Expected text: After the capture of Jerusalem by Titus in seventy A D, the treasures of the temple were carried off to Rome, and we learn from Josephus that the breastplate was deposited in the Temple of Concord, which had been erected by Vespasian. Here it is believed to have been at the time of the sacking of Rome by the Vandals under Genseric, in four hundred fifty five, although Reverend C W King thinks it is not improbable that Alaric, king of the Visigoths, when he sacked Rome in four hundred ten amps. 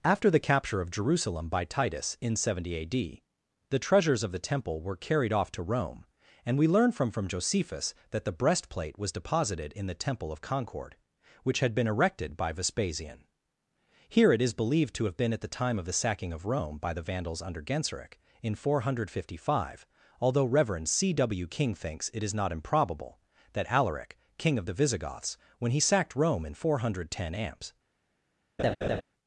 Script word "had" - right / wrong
right